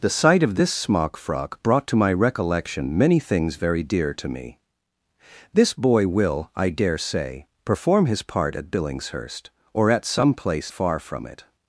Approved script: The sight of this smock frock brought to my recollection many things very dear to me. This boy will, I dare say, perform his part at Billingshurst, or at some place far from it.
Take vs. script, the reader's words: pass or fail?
pass